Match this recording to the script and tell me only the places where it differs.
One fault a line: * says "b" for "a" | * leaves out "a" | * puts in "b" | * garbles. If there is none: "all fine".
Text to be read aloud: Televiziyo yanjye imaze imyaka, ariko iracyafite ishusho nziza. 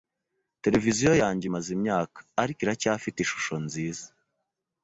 all fine